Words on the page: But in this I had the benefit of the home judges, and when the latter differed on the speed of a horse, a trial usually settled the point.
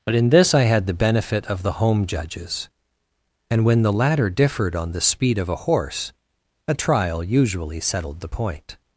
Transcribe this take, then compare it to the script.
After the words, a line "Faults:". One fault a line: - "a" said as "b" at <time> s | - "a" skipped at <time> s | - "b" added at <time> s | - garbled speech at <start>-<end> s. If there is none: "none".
But in this I had the benefit of the home judges, and when the latter differed on the speed of a horse, a trial usually settled the point.
Faults:
none